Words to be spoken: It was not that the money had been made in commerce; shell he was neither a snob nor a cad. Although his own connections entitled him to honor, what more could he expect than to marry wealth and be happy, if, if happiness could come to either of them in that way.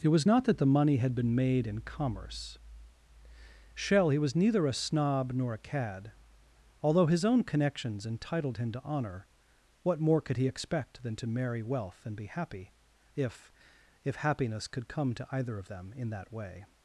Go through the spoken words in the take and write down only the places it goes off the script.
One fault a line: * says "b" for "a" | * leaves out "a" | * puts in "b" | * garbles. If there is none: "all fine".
all fine